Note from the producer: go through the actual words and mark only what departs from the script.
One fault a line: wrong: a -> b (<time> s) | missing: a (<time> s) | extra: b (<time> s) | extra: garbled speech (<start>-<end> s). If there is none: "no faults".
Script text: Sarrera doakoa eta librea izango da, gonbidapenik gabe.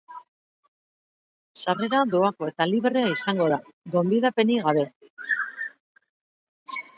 no faults